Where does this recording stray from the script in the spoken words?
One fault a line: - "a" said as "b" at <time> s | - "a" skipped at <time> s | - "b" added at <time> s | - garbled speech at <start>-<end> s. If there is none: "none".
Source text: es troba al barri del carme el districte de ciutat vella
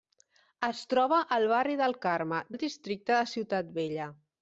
none